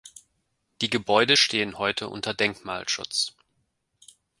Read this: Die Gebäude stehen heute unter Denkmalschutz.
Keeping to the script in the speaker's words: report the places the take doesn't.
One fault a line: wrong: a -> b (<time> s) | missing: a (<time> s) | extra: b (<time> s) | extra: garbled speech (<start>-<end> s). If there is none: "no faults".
no faults